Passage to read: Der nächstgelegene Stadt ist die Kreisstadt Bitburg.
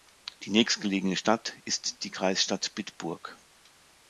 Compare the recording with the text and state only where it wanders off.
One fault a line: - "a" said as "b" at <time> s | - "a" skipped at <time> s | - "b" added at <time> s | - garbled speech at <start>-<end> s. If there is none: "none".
- "Der" said as "Die" at 0.4 s